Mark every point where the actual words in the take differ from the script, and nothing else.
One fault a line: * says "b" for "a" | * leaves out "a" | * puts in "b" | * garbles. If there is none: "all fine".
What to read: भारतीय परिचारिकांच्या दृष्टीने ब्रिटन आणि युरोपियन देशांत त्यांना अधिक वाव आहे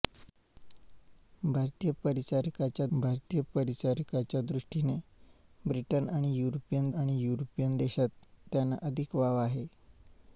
* puts in "भारतीय परिचारिकांच्या"
* puts in "आणि युरोपियन"